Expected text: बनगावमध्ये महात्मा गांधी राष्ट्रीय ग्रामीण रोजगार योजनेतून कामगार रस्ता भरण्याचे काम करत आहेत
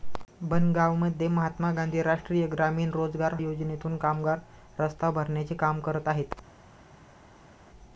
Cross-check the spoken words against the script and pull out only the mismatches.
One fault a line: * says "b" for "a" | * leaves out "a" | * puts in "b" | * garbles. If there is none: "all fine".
all fine